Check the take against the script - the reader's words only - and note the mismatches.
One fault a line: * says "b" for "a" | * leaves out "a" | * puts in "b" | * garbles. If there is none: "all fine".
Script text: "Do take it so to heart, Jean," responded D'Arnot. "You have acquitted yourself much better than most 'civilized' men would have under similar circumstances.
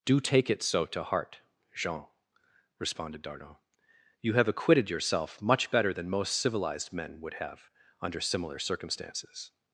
all fine